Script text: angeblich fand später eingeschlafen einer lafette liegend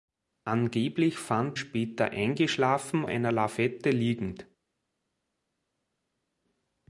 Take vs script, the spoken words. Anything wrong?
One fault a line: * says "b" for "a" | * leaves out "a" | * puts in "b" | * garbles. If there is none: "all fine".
all fine